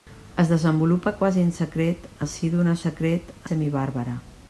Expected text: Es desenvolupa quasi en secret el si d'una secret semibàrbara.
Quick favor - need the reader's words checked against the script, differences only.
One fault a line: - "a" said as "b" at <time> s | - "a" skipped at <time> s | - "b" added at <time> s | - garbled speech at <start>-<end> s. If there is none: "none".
none